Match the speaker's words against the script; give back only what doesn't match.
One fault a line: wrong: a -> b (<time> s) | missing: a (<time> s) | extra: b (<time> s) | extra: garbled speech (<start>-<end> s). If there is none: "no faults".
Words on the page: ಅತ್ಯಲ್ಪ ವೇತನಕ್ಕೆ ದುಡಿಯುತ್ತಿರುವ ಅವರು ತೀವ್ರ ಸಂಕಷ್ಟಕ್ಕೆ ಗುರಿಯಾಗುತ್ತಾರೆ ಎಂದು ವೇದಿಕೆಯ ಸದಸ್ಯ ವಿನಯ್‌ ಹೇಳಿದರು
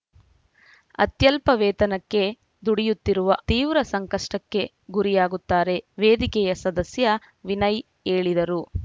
missing: ಅವರು (3.4 s)
missing: ಎಂದು (5.8 s)